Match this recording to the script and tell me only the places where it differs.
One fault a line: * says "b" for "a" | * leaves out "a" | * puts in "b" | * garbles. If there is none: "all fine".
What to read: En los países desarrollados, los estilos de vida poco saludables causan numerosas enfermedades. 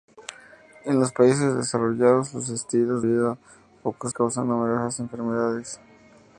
* leaves out "de"
* leaves out "saludables"